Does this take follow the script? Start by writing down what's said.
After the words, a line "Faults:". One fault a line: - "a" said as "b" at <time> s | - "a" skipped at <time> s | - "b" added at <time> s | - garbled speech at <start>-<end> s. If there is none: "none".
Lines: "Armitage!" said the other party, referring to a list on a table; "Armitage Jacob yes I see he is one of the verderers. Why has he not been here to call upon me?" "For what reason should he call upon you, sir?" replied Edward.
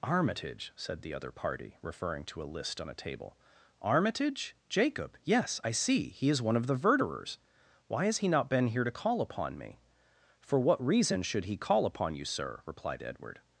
"Armitage!" said the other party, referring to a list on a table; "Armitage Jacob yes I see he is one of the verderers. Why has he not been here to call upon me?" "For what reason should he call upon you, sir?" replied Edward.
Faults:
none